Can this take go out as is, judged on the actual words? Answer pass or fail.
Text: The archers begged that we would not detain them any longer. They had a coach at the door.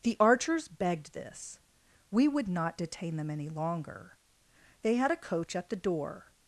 fail